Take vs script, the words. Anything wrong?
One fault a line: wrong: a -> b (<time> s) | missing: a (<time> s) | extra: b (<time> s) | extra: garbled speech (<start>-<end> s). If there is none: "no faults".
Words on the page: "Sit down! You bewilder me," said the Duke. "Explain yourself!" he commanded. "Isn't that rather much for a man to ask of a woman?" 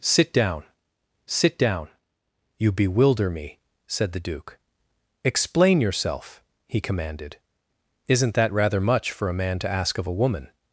extra: sit down (1.3 s)